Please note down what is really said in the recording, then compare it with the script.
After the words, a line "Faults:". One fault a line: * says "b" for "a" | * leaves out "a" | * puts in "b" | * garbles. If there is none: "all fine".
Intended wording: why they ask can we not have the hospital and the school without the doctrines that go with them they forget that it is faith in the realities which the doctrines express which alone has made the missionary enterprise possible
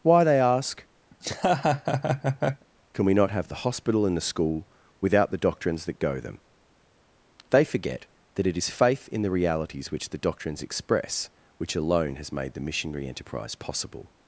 why they ask can we not have the hospital and the school without the doctrines that go them they forget that it is faith in the realities which the doctrines express which alone has made the missionary enterprise possible
Faults:
* leaves out "with"